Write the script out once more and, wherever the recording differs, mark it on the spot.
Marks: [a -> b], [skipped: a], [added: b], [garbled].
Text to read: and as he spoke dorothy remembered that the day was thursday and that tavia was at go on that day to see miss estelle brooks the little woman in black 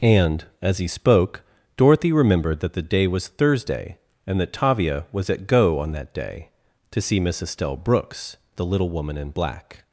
and as he spoke dorothy remembered that the day was thursday and that tavia was at go on that day to see miss estelle brooks the little woman in black